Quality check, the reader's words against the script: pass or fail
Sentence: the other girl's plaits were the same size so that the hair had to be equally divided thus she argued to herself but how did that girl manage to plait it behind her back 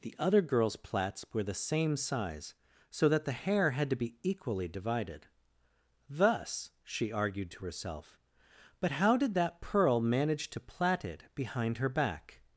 fail